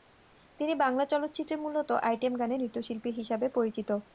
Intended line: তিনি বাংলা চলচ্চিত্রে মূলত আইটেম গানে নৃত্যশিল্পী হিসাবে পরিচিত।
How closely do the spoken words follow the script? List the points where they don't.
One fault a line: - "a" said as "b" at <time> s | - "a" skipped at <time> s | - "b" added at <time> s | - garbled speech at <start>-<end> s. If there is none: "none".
none